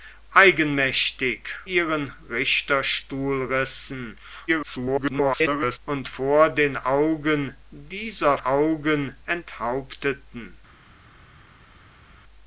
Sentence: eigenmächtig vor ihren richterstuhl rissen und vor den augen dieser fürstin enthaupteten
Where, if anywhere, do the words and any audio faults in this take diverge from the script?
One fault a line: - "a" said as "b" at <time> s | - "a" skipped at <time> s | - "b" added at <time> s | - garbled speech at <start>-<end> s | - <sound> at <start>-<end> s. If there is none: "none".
- "vor" skipped at 1.5 s
- garbled speech at 4.5-5.8 s
- "fürstin" said as "augen" at 8.4 s